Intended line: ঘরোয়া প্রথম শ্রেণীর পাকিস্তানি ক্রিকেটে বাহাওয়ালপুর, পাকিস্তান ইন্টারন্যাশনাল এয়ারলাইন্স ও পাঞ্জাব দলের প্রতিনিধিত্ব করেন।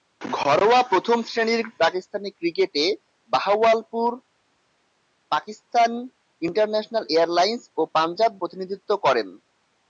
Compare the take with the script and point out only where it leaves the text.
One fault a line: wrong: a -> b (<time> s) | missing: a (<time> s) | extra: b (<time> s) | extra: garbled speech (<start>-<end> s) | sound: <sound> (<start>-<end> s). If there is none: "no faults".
missing: দলের (8.3 s)